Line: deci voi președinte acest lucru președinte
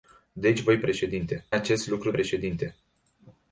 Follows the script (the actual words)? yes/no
yes